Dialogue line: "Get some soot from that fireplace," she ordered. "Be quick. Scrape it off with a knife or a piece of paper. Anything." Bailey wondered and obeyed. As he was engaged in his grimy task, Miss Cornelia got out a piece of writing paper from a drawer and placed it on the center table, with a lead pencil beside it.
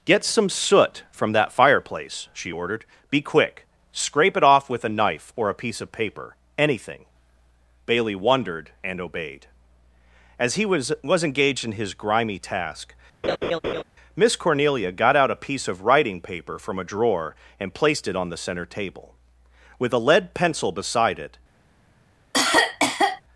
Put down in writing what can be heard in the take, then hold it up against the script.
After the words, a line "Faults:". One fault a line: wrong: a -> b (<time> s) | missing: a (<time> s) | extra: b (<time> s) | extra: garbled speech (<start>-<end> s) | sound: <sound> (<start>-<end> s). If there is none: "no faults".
"Get some soot from that fireplace," she ordered. "Be quick. Scrape it off with a knife or a piece of paper. Anything." Bailey wondered and obeyed. As he was was engaged in his grimy task, Miss Cornelia got out a piece of writing paper from a drawer and placed it on the center table, with a lead pencil beside it.
Faults:
extra: was (11.0 s)
sound: laugh (13.2-13.8 s)
sound: cough (22.3-23.2 s)